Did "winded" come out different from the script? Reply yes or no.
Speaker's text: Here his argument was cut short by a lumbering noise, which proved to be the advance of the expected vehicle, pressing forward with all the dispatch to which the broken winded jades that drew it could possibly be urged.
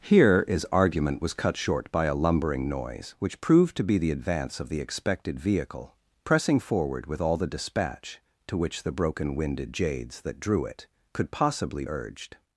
no